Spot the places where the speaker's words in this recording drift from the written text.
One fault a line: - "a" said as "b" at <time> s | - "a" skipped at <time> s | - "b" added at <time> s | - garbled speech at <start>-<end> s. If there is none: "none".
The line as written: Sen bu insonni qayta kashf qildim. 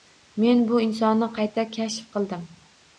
- "Sen" said as "Men" at 0.4 s